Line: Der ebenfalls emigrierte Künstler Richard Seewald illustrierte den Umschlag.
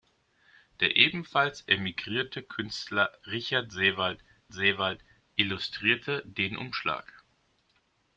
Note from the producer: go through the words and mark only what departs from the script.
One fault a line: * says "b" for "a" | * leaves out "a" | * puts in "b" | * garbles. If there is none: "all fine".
* puts in "Seewald"